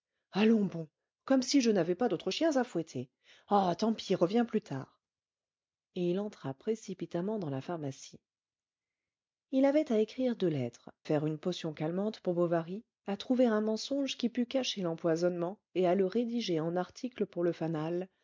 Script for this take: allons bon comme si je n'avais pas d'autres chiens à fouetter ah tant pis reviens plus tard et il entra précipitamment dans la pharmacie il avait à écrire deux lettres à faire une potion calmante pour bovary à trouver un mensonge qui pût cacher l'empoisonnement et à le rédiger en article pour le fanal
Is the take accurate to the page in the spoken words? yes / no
no